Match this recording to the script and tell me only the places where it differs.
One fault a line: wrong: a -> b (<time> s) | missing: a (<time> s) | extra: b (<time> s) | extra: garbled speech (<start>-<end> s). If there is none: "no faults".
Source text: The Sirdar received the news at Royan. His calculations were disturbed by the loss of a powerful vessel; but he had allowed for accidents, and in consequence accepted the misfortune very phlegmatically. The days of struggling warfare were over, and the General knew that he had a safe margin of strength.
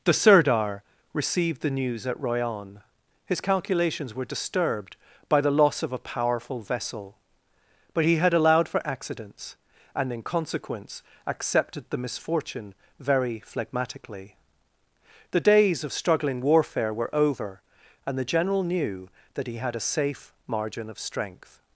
no faults